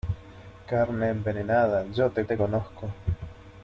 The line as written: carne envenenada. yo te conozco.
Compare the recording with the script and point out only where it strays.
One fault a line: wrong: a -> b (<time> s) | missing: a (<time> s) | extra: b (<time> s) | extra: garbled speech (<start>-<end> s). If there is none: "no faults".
extra: te (2.2 s)